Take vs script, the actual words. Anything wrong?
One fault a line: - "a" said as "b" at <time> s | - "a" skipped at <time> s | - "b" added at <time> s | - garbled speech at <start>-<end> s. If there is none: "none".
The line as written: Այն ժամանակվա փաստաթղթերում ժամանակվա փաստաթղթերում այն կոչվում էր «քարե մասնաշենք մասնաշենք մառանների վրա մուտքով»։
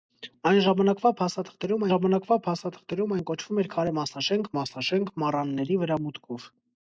none